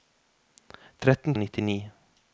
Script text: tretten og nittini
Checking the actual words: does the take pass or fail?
pass